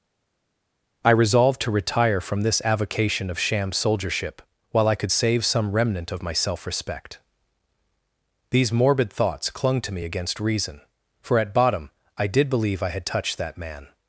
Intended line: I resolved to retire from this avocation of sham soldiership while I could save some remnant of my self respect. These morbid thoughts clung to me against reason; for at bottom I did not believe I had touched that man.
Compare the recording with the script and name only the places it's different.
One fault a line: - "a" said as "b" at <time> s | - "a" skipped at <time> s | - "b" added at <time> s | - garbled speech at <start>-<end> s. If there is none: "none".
- "not" skipped at 12.5 s